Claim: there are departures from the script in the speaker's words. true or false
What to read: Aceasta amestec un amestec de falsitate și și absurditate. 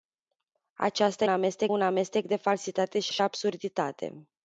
false